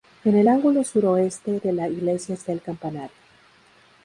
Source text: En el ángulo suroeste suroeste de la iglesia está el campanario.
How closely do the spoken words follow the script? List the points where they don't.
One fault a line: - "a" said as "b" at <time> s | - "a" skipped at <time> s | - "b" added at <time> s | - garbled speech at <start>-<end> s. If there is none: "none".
- "suroeste" skipped at 1.6 s